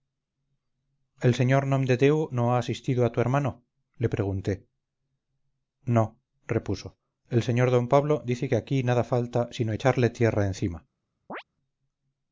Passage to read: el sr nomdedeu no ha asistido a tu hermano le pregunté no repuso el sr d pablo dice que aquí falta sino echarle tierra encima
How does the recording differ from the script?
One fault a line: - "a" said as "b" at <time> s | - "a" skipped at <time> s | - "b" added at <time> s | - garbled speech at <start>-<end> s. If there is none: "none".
- "nada" added at 8.9 s